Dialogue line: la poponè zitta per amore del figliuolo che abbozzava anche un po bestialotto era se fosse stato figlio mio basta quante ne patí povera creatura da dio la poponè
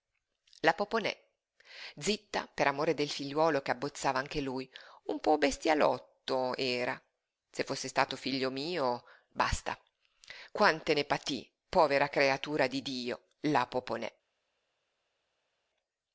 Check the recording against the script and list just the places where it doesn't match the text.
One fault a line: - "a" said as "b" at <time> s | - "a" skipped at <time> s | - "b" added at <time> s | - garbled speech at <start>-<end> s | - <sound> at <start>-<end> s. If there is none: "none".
- "lui" added at 4.4 s
- "da" said as "di" at 12.7 s